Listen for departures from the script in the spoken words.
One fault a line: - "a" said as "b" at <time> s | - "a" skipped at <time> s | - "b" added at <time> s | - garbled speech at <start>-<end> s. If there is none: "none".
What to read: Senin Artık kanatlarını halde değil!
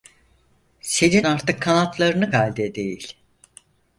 none